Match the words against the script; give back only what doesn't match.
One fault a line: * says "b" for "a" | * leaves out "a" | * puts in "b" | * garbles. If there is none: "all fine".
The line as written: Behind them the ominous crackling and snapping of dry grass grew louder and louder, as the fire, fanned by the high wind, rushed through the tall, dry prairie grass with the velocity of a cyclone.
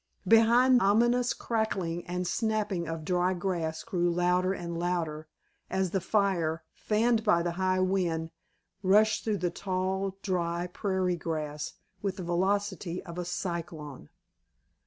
* leaves out "them the"